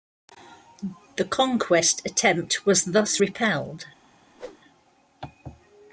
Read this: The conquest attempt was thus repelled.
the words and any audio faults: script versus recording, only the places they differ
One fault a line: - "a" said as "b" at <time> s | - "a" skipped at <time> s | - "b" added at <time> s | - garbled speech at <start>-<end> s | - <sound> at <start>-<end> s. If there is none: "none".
- whoosh at 4.3-4.6 s